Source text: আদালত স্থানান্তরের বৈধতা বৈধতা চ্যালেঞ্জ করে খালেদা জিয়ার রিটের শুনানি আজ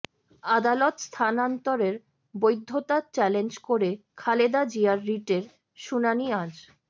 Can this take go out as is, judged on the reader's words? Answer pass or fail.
fail